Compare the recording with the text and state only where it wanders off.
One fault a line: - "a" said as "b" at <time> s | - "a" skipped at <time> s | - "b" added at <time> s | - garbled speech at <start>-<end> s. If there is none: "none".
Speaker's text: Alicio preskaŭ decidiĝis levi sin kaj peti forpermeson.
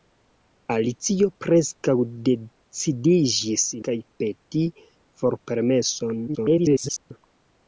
- "levi sin" skipped at 3.7 s
- garbled speech at 6.3-7.1 s